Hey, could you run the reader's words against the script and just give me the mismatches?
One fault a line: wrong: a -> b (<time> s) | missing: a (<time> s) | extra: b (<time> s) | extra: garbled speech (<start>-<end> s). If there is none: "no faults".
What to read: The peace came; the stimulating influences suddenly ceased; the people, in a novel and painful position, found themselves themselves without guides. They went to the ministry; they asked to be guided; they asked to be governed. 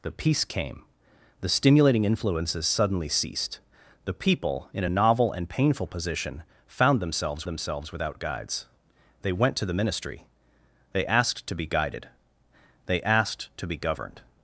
no faults